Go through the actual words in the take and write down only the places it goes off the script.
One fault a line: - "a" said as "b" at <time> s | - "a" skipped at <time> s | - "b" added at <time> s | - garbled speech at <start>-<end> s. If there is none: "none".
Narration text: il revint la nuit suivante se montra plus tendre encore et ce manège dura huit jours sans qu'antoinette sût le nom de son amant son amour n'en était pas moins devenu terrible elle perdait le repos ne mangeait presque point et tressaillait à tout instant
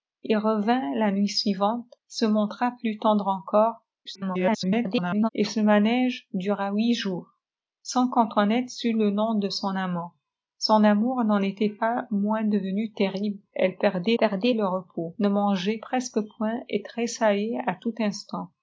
- garbled speech at 4.1-5.3 s
- "perdait" added at 14.2 s